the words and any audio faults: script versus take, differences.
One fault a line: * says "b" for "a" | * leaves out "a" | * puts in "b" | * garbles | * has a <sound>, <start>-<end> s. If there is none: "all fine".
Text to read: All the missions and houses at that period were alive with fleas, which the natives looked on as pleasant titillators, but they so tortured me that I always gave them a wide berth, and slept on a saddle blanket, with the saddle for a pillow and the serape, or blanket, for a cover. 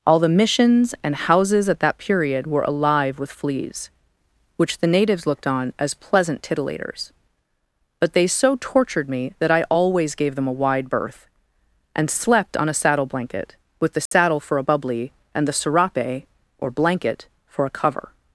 * has a dropout, 14.1-14.1 s
* says "bubbly" for "pillow"